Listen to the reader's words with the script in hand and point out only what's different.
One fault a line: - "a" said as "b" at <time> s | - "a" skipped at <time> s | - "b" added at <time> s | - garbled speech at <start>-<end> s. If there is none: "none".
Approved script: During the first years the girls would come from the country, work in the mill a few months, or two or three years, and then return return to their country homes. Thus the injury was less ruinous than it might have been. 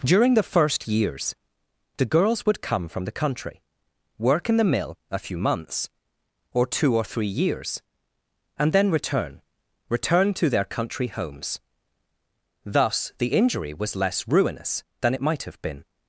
none